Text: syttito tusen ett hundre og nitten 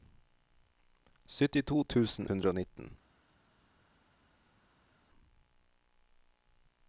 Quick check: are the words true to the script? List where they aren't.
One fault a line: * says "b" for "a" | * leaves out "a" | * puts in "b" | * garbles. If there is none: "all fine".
* leaves out "ett"